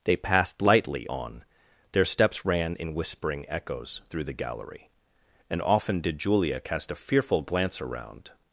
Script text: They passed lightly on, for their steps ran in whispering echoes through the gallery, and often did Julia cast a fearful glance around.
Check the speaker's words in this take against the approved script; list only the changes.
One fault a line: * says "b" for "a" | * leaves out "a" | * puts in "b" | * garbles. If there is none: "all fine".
* leaves out "for"